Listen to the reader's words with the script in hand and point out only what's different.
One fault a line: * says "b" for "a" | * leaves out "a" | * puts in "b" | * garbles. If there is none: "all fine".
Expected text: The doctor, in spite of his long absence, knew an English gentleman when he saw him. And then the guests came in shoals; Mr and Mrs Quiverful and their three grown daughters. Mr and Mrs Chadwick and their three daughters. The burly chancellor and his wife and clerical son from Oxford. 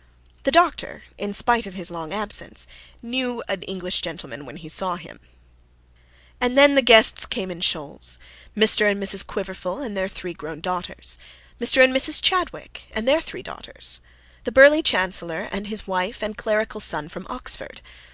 all fine